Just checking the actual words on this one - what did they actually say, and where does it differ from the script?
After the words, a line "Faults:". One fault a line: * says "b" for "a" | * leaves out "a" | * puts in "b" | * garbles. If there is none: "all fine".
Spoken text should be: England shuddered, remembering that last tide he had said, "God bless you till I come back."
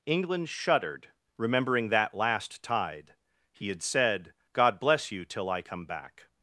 England shuddered, remembering that last tide he had said, "God bless you till I come back."
Faults:
all fine